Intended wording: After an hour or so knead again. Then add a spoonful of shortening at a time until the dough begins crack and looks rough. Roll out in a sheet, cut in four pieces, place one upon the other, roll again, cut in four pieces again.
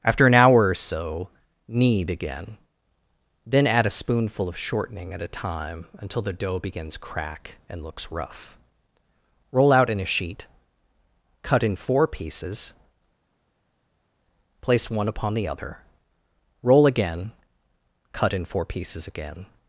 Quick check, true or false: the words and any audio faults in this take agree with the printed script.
true